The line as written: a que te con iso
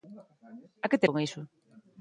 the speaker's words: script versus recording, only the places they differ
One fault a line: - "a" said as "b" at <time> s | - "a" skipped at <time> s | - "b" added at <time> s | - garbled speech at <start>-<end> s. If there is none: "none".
none